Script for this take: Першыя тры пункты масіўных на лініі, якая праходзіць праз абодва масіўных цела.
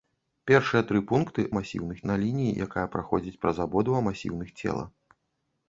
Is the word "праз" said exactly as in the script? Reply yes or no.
yes